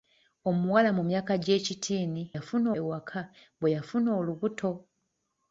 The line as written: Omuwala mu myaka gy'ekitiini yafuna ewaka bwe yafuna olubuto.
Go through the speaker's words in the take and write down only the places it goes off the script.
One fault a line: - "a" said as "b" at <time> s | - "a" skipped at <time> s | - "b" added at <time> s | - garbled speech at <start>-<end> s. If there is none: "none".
none